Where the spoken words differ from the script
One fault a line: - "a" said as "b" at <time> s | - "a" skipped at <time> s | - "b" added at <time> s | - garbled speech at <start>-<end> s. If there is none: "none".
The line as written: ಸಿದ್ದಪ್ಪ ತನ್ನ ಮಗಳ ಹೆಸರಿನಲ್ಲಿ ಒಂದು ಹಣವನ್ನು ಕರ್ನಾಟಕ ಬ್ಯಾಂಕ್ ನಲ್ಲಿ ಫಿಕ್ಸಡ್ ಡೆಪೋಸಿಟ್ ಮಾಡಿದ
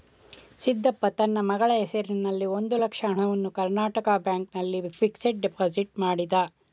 - "ಲಕ್ಷ" added at 2.8 s